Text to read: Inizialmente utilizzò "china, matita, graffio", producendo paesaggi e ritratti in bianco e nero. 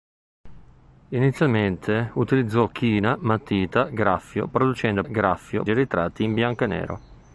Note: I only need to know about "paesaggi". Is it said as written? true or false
false